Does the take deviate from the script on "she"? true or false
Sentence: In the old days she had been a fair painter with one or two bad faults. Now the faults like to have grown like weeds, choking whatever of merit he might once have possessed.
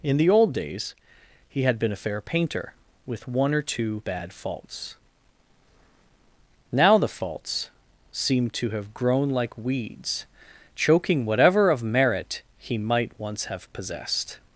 true